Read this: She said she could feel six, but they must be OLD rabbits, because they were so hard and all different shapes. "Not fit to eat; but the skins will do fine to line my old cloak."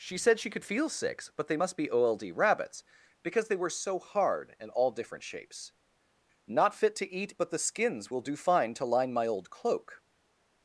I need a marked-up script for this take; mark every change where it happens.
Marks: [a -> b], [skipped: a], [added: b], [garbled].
She said she could feel six, but they must be OLD rabbits, because they were so hard and all different shapes. "Not fit to eat; but the skins will do fine to line my old cloak."